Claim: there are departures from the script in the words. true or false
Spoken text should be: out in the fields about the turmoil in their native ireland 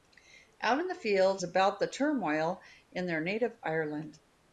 false